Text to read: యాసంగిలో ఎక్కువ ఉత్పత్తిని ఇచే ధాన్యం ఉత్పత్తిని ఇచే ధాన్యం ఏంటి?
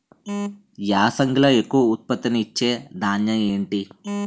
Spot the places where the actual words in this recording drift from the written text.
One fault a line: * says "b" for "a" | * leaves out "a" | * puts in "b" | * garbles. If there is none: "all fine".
* leaves out "ఉత్పత్తిని ఇచే ధాన్యం"